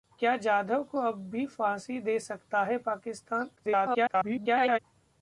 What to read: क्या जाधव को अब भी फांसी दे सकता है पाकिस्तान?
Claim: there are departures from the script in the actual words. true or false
true